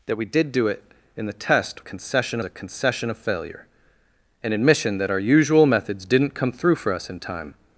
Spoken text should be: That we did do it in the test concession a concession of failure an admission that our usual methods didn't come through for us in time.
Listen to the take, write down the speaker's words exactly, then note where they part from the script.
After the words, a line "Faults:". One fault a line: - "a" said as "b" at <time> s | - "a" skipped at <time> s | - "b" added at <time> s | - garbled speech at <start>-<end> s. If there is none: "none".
That we did do it in the test concession a concession of failure an admission that our usual methods didn't come through for us in time.
Faults:
none